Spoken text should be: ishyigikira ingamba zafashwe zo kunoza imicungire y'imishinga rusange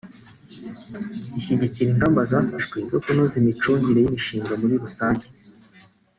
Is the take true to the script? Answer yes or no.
no